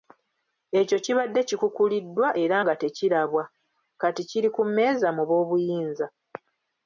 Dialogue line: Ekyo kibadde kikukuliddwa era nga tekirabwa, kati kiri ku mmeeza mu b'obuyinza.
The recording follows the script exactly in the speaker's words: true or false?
true